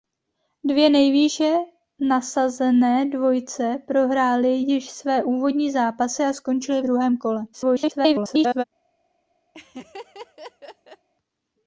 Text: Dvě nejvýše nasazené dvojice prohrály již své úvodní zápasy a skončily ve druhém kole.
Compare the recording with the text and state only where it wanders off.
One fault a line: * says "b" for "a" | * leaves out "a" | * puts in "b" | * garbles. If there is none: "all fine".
* leaves out "ve"
* garbles